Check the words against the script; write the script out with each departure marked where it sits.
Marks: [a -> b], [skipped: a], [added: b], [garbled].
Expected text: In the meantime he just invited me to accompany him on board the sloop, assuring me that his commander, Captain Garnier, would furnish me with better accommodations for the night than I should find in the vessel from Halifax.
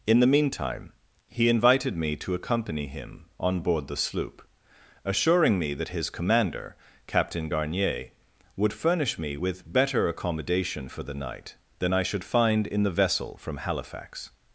In the meantime he [skipped: just] invited me to accompany him on board the sloop, assuring me that his commander, Captain Garnier, would furnish me with better [accommodations -> accommodation] for the night than I should find in the vessel from Halifax.